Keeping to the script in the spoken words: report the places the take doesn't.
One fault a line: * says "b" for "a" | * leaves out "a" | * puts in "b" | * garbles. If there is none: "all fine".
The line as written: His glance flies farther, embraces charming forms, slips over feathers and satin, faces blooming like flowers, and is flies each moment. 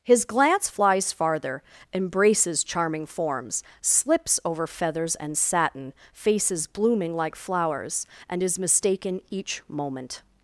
* says "mistaken" for "flies"